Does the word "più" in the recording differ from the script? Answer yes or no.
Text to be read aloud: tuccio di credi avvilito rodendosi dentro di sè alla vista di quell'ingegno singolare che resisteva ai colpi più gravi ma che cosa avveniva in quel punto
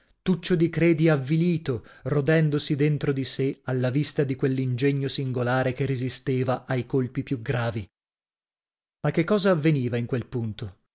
no